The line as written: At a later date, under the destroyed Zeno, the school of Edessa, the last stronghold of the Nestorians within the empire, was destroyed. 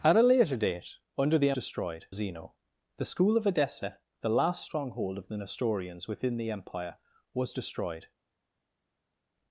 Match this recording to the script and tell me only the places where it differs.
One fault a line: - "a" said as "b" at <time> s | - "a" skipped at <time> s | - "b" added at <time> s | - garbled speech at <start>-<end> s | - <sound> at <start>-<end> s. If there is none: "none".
none